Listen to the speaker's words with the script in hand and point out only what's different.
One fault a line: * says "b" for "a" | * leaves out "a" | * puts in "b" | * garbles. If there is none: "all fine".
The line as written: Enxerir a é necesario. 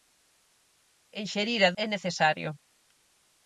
all fine